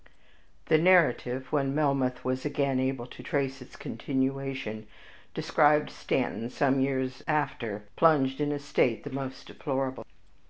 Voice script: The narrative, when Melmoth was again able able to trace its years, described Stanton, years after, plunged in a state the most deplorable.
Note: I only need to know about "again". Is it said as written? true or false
true